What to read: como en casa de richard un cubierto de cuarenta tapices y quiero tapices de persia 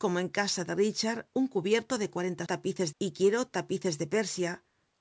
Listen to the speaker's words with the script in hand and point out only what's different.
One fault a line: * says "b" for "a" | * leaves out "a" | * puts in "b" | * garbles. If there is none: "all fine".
all fine